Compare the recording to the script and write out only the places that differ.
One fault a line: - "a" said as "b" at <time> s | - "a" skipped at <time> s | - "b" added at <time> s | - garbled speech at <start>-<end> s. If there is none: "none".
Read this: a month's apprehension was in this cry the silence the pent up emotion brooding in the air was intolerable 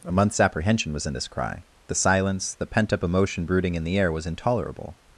none